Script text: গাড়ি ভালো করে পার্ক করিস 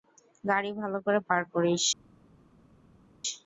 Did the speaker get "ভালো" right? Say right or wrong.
right